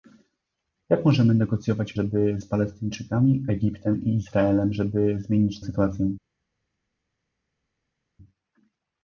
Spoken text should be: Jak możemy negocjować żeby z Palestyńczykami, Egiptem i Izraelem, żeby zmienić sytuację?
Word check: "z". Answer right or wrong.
right